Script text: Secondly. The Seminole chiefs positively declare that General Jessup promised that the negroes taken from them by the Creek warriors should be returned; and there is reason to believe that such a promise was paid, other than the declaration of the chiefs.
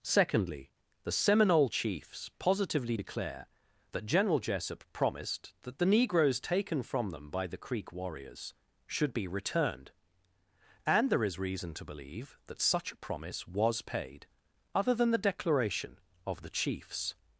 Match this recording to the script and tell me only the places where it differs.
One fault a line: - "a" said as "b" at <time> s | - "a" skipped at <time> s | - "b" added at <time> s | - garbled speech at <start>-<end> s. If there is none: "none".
none